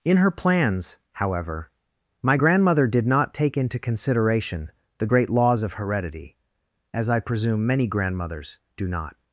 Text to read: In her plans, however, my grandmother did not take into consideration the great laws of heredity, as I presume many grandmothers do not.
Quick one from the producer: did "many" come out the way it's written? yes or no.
yes